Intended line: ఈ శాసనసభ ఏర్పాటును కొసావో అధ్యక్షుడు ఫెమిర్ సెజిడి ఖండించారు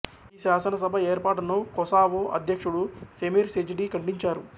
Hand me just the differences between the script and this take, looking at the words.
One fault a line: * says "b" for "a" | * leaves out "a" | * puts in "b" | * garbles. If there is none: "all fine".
all fine